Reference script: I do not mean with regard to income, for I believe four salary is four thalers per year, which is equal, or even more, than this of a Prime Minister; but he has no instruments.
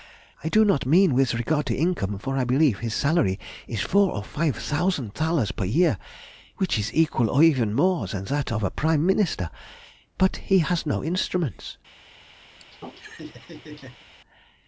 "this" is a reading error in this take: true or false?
true